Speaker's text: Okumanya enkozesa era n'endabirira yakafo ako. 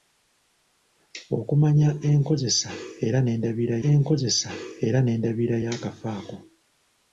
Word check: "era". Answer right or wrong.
right